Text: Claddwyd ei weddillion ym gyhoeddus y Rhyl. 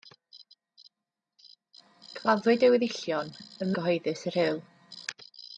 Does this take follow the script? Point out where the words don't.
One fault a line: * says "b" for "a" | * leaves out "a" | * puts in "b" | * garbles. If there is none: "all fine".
all fine